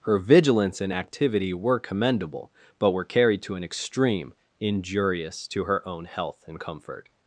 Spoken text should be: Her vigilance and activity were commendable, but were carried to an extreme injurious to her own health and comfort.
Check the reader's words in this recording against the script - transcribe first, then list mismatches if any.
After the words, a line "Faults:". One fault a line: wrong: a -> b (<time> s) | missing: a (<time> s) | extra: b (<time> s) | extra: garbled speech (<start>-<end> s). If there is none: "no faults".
Her vigilance and activity were commendable, but were carried to an extreme injurious to her own health and comfort.
Faults:
no faults